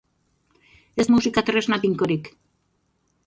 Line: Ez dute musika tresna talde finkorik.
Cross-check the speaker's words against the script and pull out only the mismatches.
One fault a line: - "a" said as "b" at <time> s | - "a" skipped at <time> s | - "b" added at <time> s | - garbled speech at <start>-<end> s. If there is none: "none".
- "dute" skipped at 1.1 s
- "talde" skipped at 1.8 s